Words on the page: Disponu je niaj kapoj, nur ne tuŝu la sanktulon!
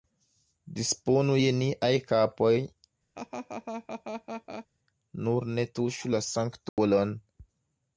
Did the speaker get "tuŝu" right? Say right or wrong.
right